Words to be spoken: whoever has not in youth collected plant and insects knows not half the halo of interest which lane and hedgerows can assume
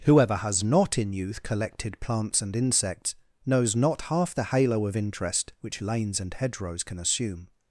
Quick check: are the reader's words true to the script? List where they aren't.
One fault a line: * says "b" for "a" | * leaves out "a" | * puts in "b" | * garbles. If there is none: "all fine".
* says "plants" for "plant"
* says "lanes" for "lane"